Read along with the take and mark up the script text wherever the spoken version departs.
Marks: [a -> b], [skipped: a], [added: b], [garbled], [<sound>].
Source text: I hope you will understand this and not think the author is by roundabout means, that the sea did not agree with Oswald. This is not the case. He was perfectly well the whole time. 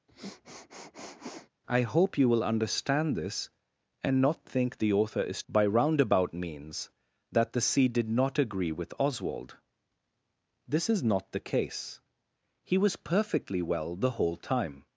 [sniff] I hope you will understand this and not think the author is by roundabout means, that the sea did not agree with Oswald. This is not the case. He was perfectly well the whole time.